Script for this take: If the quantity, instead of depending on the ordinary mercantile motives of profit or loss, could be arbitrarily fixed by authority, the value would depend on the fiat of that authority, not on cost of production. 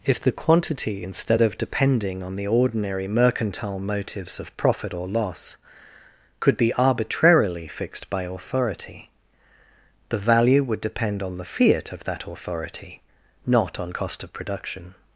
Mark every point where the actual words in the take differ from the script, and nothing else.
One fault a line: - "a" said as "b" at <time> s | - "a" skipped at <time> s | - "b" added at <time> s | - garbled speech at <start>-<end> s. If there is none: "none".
none